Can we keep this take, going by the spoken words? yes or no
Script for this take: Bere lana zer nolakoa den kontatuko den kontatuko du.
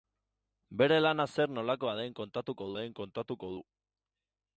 yes